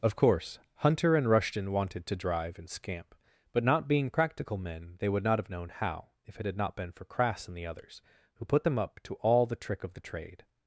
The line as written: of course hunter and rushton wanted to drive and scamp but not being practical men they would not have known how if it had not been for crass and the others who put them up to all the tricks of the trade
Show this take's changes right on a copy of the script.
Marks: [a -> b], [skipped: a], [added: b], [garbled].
of course hunter and rushton wanted to drive and scamp but not being practical men they would not have known how if it had not been for crass and the others who put them up to all the [tricks -> trick] of the trade